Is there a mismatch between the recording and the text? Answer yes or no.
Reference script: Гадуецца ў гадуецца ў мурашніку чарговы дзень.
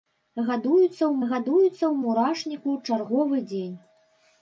no